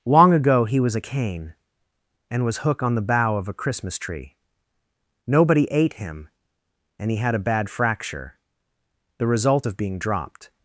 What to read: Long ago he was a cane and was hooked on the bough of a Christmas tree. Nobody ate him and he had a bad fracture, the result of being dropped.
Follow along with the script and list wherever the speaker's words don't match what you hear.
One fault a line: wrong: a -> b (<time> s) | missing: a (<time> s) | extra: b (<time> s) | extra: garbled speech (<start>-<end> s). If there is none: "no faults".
wrong: hooked -> hook (2.6 s)